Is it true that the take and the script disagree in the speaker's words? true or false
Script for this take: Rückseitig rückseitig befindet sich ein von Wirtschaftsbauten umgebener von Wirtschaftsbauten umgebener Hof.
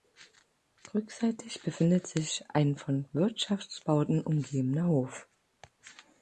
true